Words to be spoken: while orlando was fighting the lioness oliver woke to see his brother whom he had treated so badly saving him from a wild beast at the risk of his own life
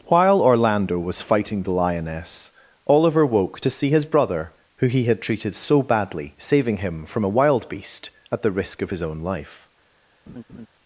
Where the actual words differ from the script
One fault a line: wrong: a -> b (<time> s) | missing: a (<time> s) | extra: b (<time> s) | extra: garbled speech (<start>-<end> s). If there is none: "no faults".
wrong: whom -> who (4.8 s)